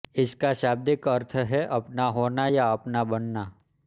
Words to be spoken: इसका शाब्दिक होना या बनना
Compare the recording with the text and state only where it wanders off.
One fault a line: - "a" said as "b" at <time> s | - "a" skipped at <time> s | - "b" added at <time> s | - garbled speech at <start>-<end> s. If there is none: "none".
- "अर्थ है अपना" added at 1.1 s
- "अपना" added at 2.7 s